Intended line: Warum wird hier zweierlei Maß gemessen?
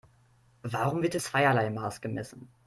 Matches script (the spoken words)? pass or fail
pass